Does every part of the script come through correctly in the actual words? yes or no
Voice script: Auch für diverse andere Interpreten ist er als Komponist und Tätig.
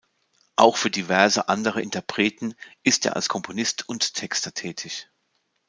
no